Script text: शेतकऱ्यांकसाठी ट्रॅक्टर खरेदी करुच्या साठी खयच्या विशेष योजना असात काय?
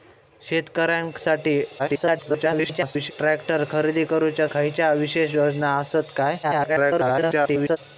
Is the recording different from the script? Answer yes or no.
yes